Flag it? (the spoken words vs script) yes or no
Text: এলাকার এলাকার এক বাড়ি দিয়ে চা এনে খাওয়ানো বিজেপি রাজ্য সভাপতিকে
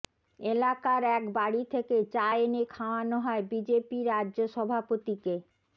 yes